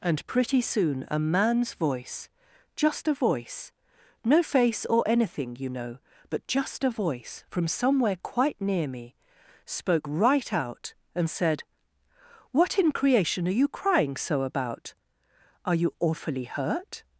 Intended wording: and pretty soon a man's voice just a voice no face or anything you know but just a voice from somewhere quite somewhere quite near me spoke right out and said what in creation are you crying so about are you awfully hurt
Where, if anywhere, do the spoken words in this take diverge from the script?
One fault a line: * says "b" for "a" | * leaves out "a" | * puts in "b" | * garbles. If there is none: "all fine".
* leaves out "somewhere quite"